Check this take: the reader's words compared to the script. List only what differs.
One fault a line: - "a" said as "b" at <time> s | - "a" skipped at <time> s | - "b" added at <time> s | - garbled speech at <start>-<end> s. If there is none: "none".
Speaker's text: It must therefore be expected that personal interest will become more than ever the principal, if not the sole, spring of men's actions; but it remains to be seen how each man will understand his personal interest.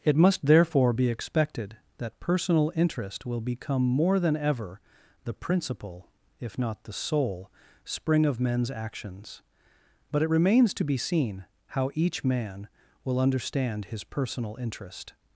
none